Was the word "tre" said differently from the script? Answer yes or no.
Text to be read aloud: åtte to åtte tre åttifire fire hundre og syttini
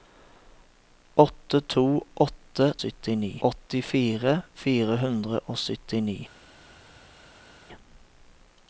yes